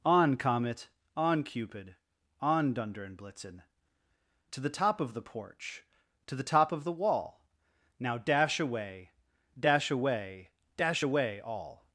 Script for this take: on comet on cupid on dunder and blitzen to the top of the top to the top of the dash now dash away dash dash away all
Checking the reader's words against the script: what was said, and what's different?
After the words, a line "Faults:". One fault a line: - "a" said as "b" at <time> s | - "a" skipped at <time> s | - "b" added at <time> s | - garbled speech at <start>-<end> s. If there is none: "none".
on comet on cupid on dunder and blitzen to the top of the porch to the top of the wall now dash away dash away dash away all
Faults:
- "top" said as "porch" at 5.2 s
- "dash" said as "wall" at 6.9 s
- "away" added at 9.9 s